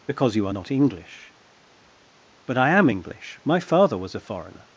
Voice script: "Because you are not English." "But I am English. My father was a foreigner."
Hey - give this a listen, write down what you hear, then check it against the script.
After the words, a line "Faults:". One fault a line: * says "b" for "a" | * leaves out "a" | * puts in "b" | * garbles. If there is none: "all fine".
"Because you are not English." "But I am English. My father was a foreigner."
Faults:
all fine